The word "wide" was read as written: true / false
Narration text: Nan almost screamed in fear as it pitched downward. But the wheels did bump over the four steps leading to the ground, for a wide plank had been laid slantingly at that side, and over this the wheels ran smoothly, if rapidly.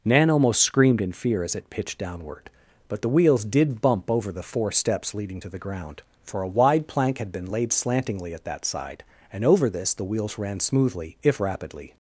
true